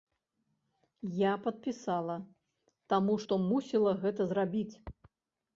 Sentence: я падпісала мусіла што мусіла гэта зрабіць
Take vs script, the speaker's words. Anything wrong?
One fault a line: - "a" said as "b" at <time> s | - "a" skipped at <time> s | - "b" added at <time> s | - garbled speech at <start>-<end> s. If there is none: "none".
- "мусіла" said as "таму" at 3.0 s